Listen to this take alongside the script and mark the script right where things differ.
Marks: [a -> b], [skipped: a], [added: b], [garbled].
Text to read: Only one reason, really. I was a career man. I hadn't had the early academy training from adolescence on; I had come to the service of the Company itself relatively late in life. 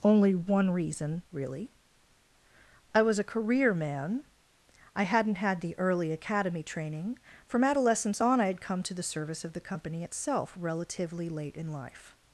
Only one reason, really. I was a career man. I hadn't had the early academy training from adolescence on; I had come to the service of the Company itself relatively late in life.